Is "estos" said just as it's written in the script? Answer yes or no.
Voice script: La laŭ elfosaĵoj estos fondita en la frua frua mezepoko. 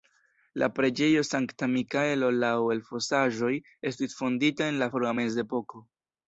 no